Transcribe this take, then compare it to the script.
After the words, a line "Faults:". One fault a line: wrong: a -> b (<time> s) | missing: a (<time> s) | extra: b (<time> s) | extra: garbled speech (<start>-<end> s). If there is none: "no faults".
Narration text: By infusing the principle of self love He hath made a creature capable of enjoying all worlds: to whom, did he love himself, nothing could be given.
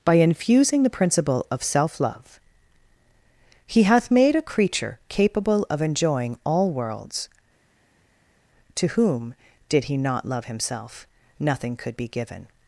By infusing the principle of self love He hath made a creature capable of enjoying all worlds: to whom, did he not love himself, nothing could be given.
Faults:
extra: not (10.0 s)